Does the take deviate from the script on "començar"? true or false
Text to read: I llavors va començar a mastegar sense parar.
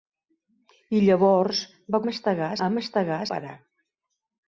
true